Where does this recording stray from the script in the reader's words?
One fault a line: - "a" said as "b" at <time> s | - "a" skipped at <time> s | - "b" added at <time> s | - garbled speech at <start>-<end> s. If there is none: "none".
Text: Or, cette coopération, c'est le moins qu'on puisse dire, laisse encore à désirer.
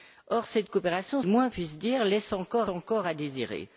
- "c'est" skipped at 1.2 s
- "qu'on" skipped at 1.5 s
- "encore" added at 2.7 s